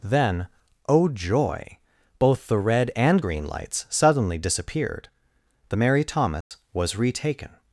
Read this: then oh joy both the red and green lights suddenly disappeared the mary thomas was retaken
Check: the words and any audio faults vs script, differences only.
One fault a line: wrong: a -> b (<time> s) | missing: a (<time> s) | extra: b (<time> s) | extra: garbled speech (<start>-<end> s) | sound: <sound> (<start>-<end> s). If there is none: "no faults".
sound: dropout (6.4-6.5 s)